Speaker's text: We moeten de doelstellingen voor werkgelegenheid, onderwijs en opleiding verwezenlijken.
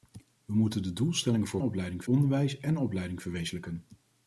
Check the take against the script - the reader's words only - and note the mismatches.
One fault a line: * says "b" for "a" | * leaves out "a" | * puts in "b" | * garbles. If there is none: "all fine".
* says "opleiding" for "werkgelegenheid"